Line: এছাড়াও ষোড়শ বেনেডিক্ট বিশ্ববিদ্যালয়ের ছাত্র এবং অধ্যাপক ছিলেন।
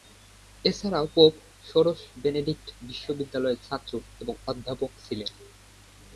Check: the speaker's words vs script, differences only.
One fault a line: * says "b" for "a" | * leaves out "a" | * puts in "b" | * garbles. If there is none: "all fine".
* puts in "পোপ"